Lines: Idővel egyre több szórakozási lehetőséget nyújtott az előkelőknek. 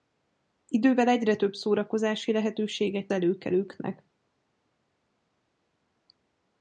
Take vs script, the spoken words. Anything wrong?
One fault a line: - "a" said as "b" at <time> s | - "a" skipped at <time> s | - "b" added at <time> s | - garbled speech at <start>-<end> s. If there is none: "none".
- "nyújtott az" skipped at 3.1 s